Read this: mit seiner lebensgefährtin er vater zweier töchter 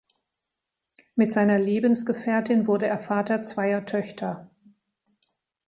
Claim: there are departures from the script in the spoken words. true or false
true